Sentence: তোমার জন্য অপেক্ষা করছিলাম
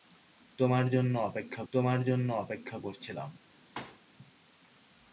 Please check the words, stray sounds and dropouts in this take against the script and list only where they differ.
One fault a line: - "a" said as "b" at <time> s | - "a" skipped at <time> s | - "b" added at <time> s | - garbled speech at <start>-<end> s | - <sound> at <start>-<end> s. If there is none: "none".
- "তোমার জন্য অপেক্ষা" added at 1.7 s
- thud at 3.8-4.0 s